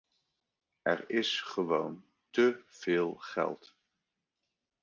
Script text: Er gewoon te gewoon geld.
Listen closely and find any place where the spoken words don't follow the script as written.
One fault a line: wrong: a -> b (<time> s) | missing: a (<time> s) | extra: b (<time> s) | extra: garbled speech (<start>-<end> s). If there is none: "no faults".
extra: is (1.1 s)
wrong: gewoon -> veel (2.7 s)